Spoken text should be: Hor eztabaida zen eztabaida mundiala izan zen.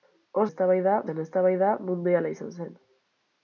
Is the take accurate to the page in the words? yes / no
yes